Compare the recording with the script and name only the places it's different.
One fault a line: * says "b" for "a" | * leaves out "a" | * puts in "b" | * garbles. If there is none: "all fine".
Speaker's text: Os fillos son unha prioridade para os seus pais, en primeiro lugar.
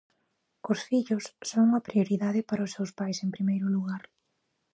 all fine